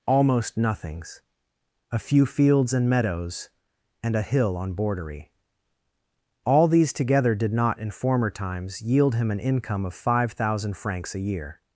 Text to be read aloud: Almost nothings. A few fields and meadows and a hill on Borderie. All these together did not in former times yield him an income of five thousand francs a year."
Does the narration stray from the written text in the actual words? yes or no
no